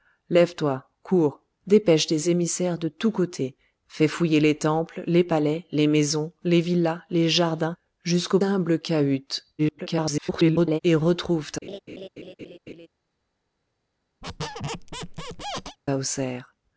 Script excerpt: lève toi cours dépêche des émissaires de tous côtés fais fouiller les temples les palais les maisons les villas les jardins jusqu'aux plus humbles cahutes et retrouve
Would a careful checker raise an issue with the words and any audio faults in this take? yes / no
yes